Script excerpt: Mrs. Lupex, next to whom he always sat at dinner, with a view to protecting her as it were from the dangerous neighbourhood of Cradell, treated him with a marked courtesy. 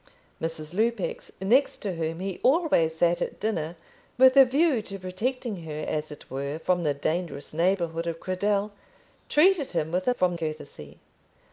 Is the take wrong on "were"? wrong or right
right